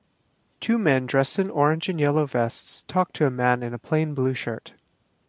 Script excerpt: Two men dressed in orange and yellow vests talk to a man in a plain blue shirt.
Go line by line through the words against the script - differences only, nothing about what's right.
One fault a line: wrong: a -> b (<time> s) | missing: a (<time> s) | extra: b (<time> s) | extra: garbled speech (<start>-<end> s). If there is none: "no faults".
no faults